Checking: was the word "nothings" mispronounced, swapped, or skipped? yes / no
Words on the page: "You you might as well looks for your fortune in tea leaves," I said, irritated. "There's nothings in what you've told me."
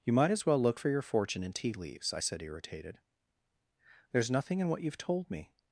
yes